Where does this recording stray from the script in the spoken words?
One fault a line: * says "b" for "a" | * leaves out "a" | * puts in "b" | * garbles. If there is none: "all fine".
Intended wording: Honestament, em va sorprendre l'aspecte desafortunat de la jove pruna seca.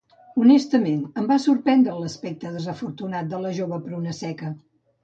all fine